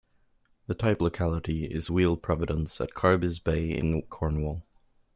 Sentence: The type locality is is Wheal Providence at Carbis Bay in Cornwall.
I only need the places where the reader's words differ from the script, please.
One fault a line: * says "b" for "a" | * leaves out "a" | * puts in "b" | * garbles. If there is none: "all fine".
* leaves out "is"